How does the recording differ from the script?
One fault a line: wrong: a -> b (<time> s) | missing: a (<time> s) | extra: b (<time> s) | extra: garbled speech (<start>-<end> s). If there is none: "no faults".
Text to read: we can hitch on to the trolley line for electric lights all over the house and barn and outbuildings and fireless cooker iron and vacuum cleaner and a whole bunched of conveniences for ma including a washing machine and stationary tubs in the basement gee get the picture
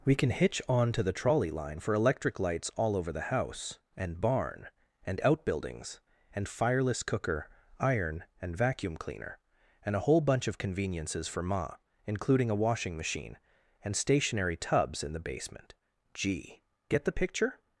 wrong: bunched -> bunch (10.2 s)